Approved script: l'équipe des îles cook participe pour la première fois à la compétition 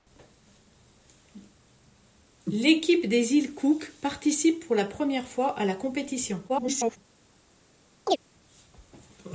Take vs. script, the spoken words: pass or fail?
fail